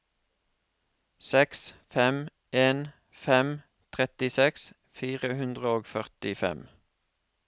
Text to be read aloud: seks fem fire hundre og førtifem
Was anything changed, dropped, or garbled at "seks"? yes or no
no